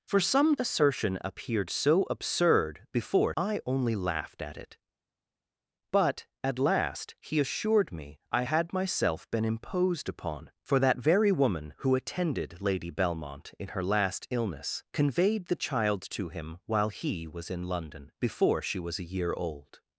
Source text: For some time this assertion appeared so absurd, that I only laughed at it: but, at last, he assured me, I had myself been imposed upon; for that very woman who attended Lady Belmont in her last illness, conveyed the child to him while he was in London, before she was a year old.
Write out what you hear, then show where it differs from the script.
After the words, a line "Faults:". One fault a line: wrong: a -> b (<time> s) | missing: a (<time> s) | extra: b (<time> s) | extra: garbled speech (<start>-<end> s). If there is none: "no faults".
For some assertion appeared so absurd, before I only laughed at it: but, at last, he assured me, I had myself been imposed upon; for that very woman who attended Lady Belmont in her last illness, conveyed the child to him while he was in London, before she was a year old.
Faults:
missing: time this (0.6 s)
wrong: that -> before (2.9 s)